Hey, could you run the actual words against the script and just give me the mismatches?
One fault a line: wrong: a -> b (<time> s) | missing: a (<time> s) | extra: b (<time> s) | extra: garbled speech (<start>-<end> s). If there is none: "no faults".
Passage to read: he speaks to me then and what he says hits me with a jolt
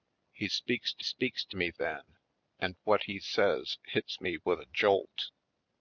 extra: speaks to (1.0 s)